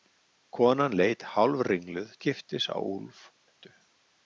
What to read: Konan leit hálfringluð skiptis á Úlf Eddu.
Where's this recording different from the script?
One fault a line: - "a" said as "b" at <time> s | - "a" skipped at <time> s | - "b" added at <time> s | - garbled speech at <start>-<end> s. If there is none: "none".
none